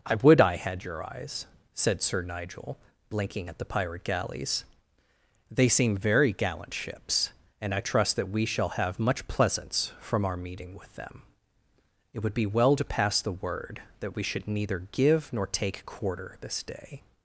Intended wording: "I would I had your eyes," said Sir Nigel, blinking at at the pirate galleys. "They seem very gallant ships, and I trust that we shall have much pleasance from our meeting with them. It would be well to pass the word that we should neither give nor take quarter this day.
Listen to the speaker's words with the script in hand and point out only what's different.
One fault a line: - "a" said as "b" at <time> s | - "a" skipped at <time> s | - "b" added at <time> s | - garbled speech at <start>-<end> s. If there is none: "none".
- "at" skipped at 3.6 s